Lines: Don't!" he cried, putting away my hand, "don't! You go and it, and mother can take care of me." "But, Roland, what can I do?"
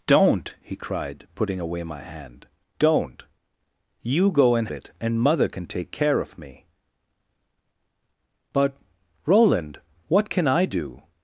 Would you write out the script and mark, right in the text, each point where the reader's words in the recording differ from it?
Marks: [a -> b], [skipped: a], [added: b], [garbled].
Don't!" he cried, putting away my hand, "don't! You go and it, and mother can take care of me." "But, Roland, what can I do?"